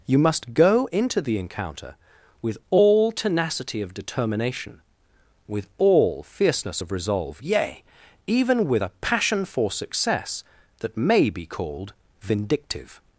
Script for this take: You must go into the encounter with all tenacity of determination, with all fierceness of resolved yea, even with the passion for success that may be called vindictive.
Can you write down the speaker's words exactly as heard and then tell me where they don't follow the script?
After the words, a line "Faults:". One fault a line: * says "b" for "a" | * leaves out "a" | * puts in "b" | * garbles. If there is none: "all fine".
You must go into the encounter with all tenacity of determination, with all fierceness of resolve yea, even with a passion for success that may be called vindictive.
Faults:
* says "resolve" for "resolved"
* says "a" for "the"